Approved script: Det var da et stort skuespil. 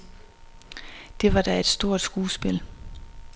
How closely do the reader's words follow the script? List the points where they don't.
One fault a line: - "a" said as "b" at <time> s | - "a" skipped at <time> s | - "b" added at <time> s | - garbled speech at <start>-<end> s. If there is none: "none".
none